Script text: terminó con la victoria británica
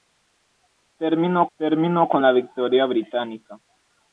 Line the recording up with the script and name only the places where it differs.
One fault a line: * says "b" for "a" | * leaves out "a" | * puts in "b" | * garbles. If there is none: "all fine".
* puts in "terminó"